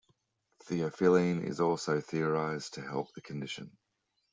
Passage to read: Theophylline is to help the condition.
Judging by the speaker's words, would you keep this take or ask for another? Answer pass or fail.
fail